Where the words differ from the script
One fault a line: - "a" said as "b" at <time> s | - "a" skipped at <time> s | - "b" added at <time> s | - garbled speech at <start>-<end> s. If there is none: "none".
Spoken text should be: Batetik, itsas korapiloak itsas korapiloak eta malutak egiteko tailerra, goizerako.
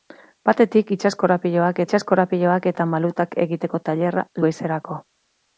none